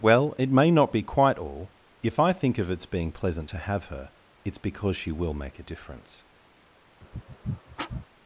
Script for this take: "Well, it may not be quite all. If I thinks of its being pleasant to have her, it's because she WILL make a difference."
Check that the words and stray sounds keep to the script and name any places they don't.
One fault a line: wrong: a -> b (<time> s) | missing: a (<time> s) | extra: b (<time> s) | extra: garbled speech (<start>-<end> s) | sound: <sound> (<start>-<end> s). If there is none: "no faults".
wrong: thinks -> think (2.3 s)
sound: sniff (7.0-8.1 s)